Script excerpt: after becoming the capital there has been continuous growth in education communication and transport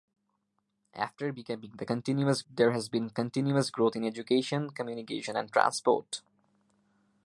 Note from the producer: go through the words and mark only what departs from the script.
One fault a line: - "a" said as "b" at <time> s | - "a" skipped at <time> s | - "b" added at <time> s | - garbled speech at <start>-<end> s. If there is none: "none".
- "capital" said as "continuous" at 1.8 s